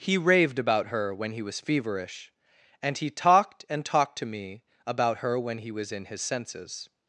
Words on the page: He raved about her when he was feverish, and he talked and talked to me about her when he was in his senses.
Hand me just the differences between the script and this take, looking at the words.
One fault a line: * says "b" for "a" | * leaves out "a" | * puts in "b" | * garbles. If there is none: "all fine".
all fine